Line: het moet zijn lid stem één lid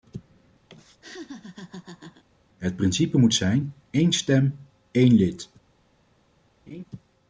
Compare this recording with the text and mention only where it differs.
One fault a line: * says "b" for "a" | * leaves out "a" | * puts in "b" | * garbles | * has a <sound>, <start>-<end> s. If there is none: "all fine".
* has a laugh, 0.7-2.2 s
* puts in "principe"
* says "één" for "lid"
* has a laugh, 6.7-6.8 s